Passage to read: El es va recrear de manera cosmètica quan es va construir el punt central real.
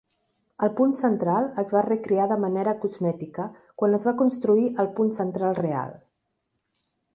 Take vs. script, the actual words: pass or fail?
fail